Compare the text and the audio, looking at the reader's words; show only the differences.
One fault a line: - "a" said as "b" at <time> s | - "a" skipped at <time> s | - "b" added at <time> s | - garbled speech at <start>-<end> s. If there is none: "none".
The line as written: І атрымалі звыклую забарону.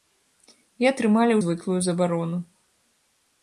none